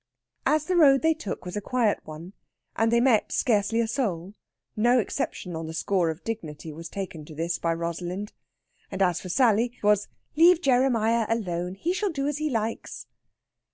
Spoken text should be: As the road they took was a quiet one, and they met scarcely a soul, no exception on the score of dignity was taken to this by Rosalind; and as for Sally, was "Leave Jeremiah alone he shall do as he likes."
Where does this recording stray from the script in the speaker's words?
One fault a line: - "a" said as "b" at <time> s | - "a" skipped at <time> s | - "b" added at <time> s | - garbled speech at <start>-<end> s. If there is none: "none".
none